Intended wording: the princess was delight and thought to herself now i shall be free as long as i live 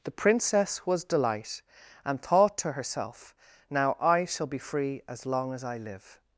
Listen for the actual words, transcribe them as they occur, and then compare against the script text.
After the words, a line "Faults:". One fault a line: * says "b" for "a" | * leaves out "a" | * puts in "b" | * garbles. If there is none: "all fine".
the princess was delight and thought to herself now i shall be free as long as i live
Faults:
all fine